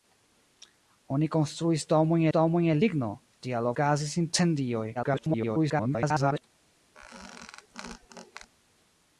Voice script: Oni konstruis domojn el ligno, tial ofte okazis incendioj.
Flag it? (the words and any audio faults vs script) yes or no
yes